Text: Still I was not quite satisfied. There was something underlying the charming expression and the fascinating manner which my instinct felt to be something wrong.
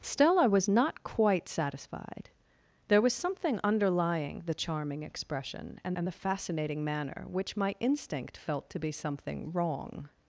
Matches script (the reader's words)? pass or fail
fail